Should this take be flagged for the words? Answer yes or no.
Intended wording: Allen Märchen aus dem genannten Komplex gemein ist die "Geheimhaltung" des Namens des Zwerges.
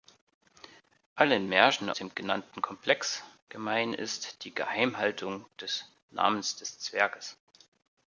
yes